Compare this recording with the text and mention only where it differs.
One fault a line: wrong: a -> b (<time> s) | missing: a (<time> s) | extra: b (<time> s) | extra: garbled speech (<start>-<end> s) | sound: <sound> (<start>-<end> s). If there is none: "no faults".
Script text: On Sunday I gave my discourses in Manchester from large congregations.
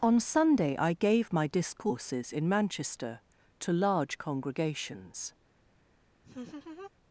wrong: from -> to (3.6 s)
sound: laugh (6.2-6.9 s)